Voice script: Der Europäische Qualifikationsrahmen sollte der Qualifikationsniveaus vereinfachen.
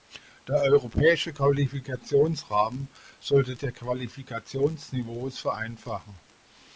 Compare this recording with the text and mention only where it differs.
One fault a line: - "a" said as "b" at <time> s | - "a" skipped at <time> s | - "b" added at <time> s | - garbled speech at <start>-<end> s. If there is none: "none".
none